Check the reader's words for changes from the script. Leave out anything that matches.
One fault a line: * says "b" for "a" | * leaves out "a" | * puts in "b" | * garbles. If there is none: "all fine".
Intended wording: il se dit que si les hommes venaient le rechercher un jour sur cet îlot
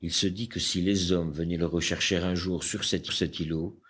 * puts in "cet"